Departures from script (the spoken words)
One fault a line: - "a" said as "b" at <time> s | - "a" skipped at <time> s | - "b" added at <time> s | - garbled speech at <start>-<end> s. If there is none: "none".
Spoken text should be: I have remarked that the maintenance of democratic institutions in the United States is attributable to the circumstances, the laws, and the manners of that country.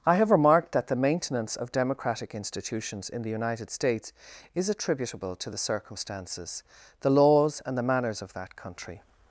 none